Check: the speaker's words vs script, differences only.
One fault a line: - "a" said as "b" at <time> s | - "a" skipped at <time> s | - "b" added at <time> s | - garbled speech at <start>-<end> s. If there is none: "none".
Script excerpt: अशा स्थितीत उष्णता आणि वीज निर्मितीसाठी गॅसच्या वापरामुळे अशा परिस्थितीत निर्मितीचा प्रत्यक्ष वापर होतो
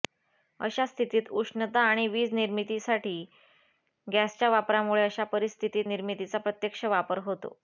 none